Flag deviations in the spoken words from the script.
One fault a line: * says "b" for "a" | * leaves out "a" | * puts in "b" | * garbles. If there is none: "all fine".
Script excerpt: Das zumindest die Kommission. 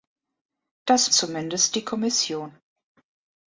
all fine